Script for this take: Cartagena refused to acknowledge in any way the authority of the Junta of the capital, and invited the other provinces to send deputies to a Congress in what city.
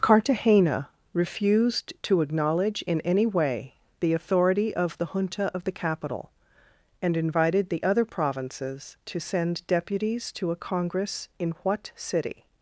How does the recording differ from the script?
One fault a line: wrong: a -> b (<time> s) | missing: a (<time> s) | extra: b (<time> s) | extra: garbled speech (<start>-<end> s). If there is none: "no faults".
no faults